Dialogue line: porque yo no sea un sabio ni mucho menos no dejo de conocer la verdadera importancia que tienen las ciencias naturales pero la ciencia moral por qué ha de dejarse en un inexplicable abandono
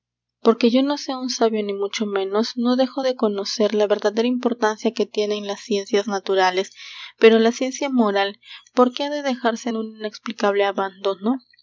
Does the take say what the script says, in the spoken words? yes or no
yes